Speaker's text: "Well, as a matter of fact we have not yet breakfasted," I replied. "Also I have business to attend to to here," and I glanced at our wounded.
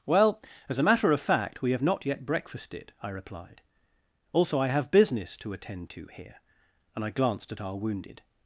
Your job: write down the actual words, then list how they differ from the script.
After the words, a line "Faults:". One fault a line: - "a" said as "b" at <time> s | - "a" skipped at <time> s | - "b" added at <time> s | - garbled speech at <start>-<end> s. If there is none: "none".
"Well, as a matter of fact we have not yet breakfasted," I replied. "Also I have business to attend to here," and I glanced at our wounded.
Faults:
- "to" skipped at 6.1 s